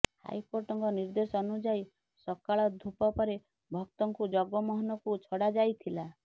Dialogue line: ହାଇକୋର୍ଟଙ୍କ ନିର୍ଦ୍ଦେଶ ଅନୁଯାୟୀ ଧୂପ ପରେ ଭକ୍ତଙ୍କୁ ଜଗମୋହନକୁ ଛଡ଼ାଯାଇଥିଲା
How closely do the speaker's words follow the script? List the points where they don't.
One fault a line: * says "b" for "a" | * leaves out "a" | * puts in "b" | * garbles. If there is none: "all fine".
* puts in "ସକାଳ"